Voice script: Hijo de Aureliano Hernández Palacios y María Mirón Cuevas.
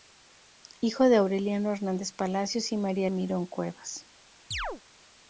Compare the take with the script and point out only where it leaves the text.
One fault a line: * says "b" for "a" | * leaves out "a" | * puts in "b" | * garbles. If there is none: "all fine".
all fine